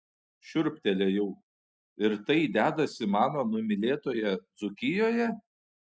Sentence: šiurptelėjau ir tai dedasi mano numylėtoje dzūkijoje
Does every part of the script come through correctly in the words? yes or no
yes